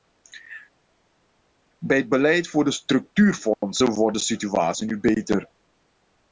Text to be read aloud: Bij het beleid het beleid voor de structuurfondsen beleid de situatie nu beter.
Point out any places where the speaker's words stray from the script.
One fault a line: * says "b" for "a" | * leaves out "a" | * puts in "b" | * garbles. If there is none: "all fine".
* leaves out "het beleid"
* says "wordt" for "beleid"